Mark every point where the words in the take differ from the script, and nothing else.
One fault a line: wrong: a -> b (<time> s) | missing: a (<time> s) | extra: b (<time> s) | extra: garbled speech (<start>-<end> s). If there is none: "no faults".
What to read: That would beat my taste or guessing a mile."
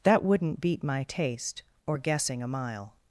wrong: would -> wouldn't (0.2 s)